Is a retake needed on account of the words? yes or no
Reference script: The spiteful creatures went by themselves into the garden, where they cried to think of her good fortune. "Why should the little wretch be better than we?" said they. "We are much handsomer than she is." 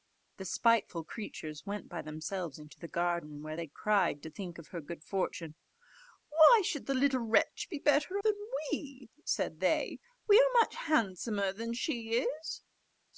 no